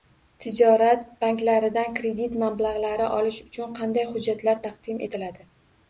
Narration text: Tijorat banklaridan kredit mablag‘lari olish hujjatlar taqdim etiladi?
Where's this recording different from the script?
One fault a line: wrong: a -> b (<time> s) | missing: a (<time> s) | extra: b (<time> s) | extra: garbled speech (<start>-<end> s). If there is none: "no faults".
extra: uchun qanday (3.5 s)